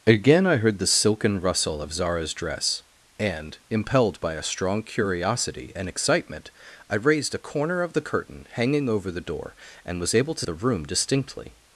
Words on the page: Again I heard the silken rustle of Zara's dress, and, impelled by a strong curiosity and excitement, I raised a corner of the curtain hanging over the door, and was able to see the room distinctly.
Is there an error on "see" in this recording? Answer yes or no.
yes